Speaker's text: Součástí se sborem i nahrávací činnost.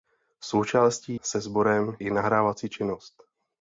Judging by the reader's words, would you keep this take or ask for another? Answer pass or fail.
pass